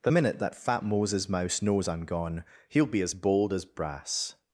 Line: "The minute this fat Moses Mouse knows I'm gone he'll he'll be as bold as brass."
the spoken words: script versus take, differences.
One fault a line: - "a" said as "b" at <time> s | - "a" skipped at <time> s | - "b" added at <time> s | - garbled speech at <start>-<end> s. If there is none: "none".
- "this" said as "that" at 0.4 s
- "he'll" skipped at 2.9 s